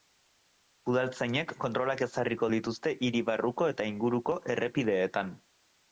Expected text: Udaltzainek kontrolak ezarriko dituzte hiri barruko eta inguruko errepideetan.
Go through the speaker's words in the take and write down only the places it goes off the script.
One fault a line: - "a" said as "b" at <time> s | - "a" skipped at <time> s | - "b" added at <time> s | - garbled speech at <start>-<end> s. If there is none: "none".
none